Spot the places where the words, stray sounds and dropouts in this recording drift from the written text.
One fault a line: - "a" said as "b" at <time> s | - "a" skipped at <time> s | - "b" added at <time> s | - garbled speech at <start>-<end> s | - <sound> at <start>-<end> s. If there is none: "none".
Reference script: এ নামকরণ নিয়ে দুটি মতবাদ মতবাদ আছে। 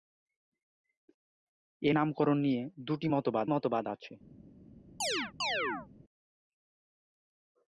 - chirp at 5.0-5.9 s